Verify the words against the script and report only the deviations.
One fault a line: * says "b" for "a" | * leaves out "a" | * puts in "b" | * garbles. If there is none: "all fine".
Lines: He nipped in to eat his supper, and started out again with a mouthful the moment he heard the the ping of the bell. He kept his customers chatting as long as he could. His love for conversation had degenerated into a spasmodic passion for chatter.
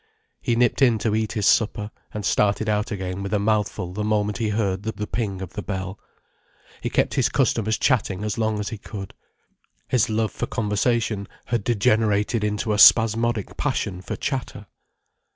all fine